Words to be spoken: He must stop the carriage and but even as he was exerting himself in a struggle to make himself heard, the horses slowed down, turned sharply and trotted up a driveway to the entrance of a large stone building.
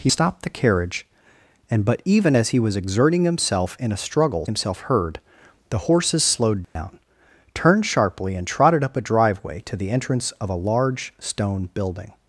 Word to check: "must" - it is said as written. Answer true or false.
false